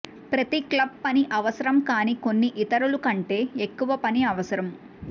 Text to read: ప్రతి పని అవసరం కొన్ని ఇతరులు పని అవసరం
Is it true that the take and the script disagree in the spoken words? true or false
true